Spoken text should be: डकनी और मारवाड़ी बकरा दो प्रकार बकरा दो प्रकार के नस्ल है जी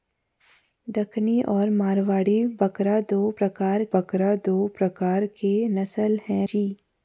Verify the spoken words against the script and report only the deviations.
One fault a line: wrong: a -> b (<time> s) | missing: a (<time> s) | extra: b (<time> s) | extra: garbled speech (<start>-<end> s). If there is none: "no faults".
no faults